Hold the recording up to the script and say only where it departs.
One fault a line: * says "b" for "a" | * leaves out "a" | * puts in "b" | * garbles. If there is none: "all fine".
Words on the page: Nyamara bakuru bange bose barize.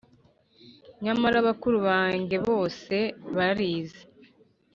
all fine